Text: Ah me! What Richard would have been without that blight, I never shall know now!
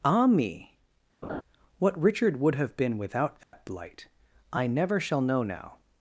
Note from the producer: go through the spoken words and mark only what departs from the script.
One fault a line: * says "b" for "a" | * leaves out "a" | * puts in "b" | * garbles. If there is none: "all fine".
all fine